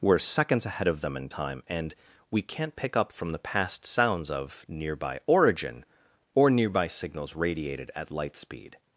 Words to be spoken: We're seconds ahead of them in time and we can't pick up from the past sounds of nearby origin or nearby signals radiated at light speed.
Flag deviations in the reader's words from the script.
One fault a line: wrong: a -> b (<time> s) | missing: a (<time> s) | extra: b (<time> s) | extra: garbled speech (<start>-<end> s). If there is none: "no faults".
no faults